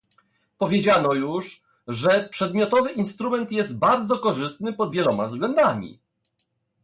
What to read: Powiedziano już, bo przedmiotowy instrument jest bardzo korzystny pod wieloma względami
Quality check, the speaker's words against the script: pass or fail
fail